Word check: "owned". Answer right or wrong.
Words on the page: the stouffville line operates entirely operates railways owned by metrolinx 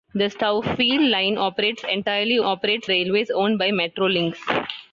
right